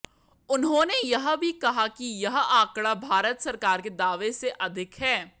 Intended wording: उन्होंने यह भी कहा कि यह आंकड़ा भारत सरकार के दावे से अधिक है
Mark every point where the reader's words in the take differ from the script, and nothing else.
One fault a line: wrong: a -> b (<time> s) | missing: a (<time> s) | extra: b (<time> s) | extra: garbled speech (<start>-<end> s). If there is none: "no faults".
no faults